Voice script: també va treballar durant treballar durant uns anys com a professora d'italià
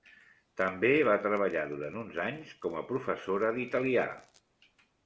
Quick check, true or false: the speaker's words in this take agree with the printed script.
false